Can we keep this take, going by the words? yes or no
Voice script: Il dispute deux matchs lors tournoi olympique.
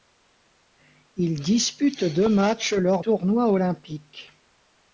yes